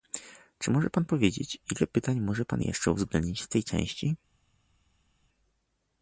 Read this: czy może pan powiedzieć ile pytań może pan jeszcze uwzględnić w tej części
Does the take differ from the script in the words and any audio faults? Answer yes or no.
no